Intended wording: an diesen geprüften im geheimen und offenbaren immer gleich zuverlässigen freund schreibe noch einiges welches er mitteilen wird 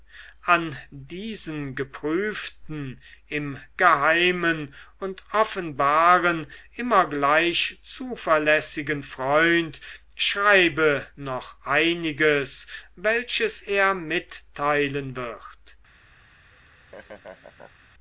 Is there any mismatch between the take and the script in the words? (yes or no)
no